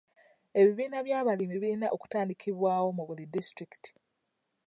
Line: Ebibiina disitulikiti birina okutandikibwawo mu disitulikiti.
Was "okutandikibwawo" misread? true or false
false